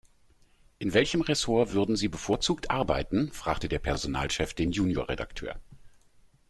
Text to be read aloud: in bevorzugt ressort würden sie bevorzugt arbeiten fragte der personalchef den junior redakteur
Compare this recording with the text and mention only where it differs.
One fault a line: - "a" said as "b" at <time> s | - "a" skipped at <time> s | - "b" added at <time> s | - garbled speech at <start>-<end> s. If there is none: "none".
- "bevorzugt" said as "welchem" at 0.9 s